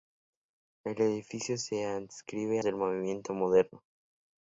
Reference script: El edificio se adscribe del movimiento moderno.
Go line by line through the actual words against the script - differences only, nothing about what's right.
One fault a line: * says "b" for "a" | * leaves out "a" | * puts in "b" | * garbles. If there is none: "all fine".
all fine